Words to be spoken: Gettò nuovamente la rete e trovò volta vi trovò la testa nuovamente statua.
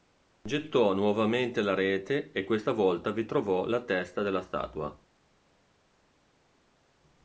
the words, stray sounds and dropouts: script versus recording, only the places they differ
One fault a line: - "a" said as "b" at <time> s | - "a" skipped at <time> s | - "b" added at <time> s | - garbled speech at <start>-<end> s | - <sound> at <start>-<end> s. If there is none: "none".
- "trovò" said as "questa" at 2.4 s
- "nuovamente" said as "della" at 4.2 s